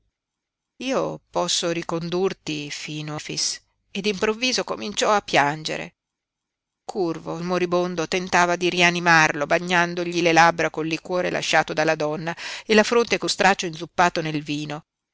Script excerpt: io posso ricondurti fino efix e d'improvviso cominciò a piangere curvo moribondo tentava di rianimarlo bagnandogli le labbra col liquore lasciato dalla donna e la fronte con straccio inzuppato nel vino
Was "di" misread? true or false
false